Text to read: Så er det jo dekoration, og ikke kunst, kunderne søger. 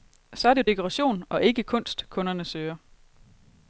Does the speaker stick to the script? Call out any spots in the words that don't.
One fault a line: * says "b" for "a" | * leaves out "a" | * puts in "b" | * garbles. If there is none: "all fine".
all fine